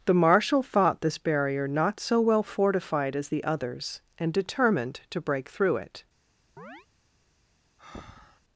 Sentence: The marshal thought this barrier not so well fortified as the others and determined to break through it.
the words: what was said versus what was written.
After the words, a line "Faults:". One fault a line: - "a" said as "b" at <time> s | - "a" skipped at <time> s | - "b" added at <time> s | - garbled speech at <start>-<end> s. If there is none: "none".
The marshal thought this barrier not so well fortified as the others and determined to break through it.
Faults:
none